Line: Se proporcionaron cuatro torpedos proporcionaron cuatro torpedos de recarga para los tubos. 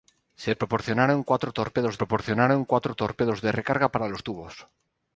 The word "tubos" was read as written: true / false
true